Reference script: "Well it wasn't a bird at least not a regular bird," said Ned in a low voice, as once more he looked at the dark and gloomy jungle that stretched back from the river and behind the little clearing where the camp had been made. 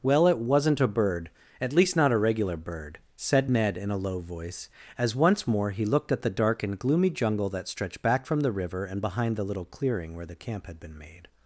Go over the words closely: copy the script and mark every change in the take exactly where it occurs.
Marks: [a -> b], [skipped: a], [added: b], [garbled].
"Well it wasn't a bird at least not a regular bird," said Ned in a low voice, as once more he looked at the dark and gloomy jungle that stretched back from the river and behind the little clearing where the camp had been made.